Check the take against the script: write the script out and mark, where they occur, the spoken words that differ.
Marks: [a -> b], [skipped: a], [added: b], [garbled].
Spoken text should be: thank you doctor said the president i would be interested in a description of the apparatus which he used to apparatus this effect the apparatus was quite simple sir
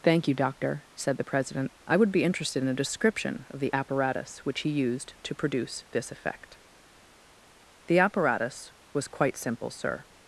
thank you doctor said the president i would be interested in a description of the apparatus which he used to [apparatus -> produce] this effect the apparatus was quite simple sir